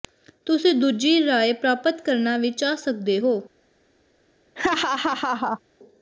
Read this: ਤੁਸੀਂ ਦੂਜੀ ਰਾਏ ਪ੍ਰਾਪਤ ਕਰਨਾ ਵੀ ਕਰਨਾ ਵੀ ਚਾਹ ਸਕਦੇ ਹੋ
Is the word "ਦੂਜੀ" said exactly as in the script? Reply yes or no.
yes